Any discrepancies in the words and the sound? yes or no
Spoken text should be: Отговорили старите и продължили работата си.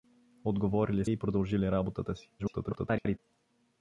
yes